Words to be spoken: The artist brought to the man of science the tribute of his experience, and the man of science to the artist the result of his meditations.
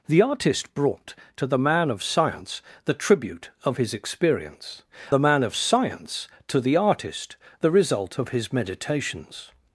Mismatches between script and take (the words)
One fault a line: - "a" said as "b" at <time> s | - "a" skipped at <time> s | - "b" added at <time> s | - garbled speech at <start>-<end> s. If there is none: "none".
- "and" skipped at 4.8 s